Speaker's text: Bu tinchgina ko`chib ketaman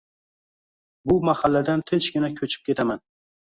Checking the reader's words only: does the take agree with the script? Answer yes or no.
no